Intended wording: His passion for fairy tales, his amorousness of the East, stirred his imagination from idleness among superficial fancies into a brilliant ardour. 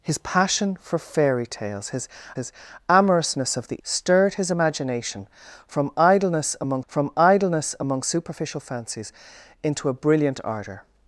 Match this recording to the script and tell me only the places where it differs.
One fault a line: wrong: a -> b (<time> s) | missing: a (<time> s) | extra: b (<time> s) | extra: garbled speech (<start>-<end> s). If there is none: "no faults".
extra: his (2.3 s)
missing: East (3.8 s)
extra: from idleness among (6.9 s)